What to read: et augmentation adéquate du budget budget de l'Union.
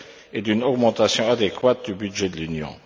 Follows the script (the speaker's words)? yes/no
no